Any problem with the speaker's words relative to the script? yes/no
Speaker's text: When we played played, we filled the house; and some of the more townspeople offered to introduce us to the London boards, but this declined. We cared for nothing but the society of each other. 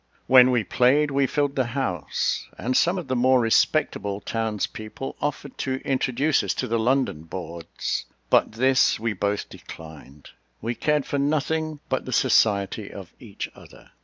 yes